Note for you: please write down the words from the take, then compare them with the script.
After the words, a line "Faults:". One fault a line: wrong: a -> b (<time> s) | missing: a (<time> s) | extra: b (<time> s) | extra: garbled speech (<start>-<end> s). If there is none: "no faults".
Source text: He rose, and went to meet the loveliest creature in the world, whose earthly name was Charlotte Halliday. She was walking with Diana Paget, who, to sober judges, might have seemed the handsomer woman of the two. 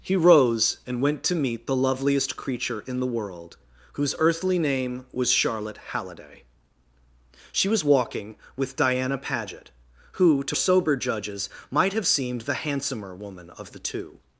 He rose, and went to meet the loveliest creature in the world, whose earthly name was Charlotte Halliday. She was walking with Diana Paget, who, to sober judges, might have seemed the handsomer woman of the two.
Faults:
no faults